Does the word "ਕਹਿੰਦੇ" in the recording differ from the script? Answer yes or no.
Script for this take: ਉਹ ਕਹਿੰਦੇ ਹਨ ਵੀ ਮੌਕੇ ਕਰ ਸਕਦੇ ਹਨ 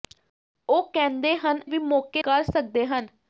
no